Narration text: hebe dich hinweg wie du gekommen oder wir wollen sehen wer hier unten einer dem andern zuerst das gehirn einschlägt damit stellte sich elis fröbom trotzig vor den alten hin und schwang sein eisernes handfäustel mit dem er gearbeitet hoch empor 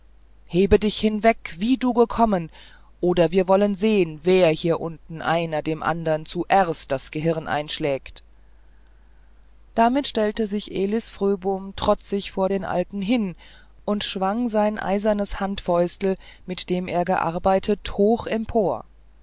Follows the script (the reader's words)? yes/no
yes